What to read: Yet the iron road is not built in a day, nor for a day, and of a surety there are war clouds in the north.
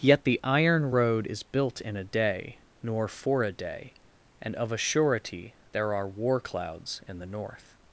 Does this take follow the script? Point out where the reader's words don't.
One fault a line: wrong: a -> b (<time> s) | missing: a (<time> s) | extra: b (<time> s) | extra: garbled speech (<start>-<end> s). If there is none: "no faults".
missing: not (1.4 s)